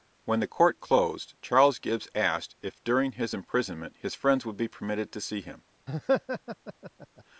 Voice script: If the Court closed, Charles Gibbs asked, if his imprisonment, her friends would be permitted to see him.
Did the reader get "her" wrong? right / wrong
wrong